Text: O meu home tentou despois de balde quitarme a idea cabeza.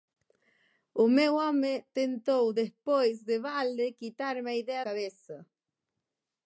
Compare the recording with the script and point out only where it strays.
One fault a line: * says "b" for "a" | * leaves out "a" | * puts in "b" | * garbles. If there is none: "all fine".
all fine